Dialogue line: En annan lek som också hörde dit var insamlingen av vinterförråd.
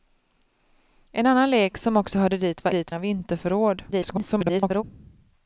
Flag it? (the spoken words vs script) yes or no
yes